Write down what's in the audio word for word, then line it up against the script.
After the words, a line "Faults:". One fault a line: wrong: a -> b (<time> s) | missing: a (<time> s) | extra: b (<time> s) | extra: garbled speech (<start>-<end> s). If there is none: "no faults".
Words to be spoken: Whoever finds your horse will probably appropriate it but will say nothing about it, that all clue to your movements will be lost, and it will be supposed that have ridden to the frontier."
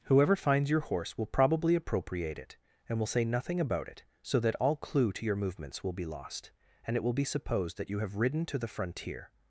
Whoever finds your horse will probably appropriate it and will say nothing about it, so that all clue to your movements will be lost, and it will be supposed that you have ridden to the frontier."
Faults:
wrong: but -> and (2.9 s)
extra: so (4.2 s)
extra: you (7.9 s)